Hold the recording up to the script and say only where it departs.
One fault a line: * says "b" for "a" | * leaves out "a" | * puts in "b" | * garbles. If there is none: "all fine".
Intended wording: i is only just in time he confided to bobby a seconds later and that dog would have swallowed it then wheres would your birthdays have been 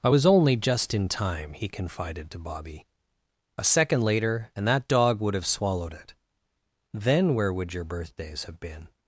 * says "was" for "is"
* says "second" for "seconds"
* says "where" for "wheres"